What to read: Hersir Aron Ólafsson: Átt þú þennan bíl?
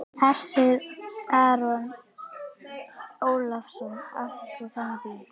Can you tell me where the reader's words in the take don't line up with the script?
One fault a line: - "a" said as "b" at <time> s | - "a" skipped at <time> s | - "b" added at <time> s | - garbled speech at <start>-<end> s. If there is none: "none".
none